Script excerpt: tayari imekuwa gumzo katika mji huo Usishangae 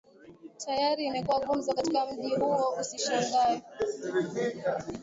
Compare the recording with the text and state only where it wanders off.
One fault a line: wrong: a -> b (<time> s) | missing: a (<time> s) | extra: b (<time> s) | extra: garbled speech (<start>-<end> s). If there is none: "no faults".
no faults